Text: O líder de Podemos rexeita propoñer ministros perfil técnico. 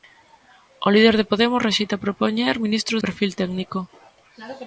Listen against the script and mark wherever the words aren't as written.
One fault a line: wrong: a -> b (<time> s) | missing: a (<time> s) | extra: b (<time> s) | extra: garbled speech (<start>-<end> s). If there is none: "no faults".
no faults